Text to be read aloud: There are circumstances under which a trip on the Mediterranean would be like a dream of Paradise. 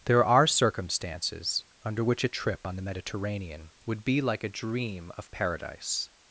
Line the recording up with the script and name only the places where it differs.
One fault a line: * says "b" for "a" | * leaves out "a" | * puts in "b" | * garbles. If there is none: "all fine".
all fine